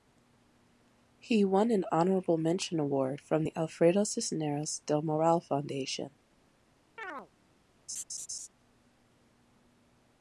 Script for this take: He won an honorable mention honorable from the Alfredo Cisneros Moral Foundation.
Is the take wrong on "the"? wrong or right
right